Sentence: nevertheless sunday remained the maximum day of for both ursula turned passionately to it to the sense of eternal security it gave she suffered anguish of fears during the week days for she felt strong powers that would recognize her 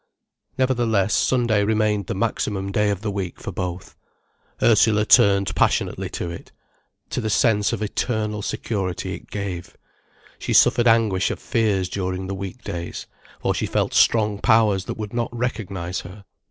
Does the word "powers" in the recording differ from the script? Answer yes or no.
no